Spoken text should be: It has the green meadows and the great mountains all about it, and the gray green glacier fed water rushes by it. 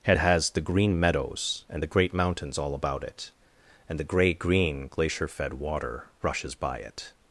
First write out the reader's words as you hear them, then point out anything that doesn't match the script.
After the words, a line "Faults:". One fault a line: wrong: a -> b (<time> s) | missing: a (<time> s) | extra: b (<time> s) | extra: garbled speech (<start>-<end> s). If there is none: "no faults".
It has the green meadows and the great mountains all about it, and the gray green glacier fed water rushes by it.
Faults:
no faults